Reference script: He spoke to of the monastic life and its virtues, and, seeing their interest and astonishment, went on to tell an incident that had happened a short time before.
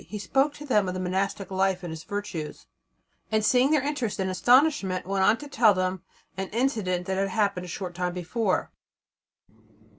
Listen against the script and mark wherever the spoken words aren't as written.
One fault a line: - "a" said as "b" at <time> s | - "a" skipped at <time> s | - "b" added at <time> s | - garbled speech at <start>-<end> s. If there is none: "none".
- "them" added at 0.7 s
- "them" added at 5.7 s